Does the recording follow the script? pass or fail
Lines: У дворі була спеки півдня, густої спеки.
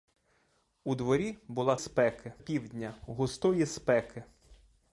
pass